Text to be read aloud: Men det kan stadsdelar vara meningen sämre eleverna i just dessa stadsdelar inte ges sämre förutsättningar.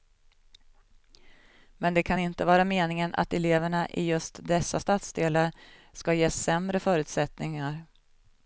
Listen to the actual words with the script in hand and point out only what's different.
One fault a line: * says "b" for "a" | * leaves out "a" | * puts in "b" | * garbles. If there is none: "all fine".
* says "inte" for "stadsdelar"
* says "att" for "sämre"
* says "ska" for "inte"